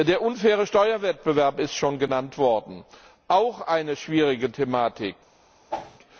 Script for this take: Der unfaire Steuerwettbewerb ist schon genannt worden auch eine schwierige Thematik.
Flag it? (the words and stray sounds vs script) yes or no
yes